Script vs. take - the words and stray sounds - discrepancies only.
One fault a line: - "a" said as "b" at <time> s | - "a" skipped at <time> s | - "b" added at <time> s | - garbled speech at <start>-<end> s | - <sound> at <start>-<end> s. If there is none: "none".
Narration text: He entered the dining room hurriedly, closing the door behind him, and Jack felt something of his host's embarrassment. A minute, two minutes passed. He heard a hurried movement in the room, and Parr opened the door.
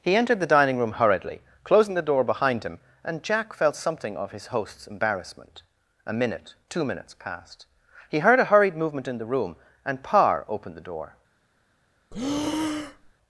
- breath at 12.1-13.1 s